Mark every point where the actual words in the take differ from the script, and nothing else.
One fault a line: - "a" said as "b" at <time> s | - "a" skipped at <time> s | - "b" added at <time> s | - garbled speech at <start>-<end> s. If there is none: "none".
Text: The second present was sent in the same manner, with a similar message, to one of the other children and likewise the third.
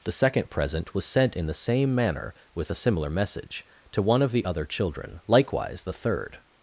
- "and" skipped at 5.2 s